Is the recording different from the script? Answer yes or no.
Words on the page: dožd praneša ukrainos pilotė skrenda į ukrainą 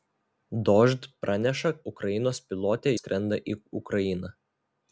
no